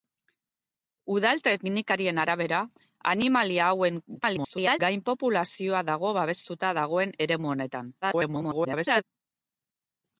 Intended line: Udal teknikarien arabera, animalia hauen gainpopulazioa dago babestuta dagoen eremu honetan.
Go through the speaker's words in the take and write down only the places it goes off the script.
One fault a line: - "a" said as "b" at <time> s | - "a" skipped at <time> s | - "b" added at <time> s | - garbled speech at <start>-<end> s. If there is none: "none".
- garbled speech at 4.2-4.8 s
- garbled speech at 8.0-9.0 s